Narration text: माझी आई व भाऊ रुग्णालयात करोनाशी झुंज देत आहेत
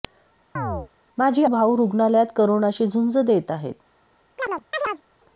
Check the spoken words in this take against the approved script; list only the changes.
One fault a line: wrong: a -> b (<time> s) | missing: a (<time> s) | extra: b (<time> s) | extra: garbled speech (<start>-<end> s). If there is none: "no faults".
missing: आई व (1.4 s)